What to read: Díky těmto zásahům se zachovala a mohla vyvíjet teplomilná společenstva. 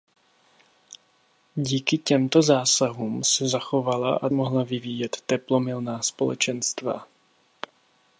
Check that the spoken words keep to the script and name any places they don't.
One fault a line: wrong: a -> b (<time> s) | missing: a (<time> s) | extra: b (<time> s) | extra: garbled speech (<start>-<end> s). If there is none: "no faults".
no faults